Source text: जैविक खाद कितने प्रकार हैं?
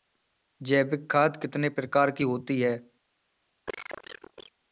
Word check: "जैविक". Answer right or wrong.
right